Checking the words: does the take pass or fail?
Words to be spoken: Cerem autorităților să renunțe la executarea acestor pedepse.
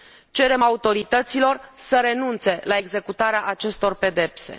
pass